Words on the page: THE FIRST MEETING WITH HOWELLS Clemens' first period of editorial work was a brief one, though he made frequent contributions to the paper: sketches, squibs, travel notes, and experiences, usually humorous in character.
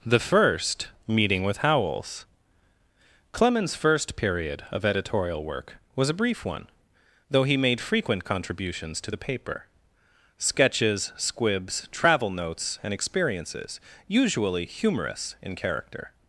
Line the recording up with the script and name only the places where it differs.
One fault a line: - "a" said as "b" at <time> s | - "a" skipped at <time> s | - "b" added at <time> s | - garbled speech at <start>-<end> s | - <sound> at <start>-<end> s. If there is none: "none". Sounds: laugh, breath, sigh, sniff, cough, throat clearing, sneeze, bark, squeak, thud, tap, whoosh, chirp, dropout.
none